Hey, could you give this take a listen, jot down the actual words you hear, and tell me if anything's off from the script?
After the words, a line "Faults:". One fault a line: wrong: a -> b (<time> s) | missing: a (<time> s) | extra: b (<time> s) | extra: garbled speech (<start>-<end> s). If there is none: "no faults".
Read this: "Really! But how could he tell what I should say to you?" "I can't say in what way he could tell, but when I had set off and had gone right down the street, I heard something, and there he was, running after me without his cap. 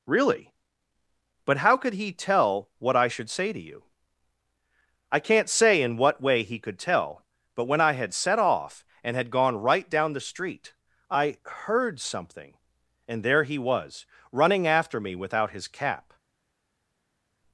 "Really! But how could he tell what I should say to you?" "I can't say in what way he could tell, but when I had set off and had gone right down the street, I heard something, and there he was, running after me without his cap.
Faults:
no faults